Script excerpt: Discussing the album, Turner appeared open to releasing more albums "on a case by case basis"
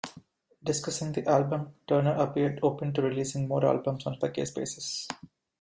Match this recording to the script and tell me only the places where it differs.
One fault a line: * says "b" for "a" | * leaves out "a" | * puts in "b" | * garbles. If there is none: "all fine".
* leaves out "case"